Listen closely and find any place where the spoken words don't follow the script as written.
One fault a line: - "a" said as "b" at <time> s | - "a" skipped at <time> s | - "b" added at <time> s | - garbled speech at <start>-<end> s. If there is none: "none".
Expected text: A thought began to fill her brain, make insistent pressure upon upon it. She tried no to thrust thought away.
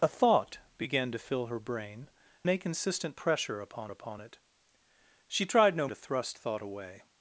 none